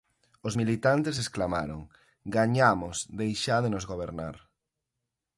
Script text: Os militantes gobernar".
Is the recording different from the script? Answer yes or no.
yes